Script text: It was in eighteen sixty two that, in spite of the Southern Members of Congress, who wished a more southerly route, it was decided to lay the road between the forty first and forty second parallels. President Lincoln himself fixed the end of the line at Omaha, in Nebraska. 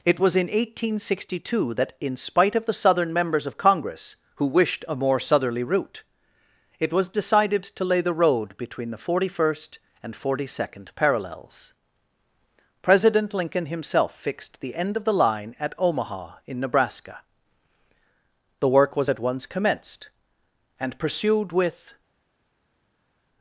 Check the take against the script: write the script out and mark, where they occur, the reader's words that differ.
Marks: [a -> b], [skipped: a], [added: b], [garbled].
It was in eighteen sixty two that, in spite of the Southern Members of Congress, who wished a more southerly route, it was decided to lay the road between the forty first and forty second parallels. President Lincoln himself fixed the end of the line at Omaha, in Nebraska. [added: The work was at once commenced and pursued with]